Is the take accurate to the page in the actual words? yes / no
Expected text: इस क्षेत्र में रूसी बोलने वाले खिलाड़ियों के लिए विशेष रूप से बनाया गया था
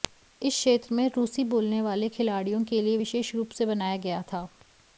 yes